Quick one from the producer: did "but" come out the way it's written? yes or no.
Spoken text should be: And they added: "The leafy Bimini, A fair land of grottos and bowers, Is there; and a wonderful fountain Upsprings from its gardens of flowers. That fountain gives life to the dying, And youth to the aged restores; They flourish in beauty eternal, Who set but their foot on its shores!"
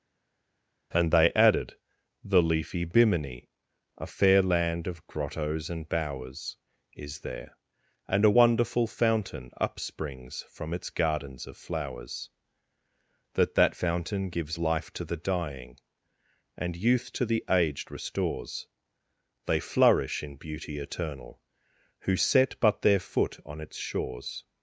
yes